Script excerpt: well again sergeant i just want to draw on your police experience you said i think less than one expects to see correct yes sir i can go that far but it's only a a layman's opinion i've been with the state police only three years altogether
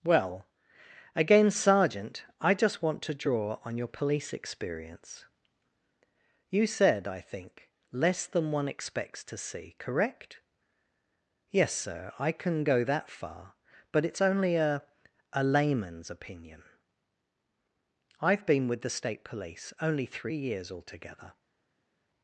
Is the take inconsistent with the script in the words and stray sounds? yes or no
no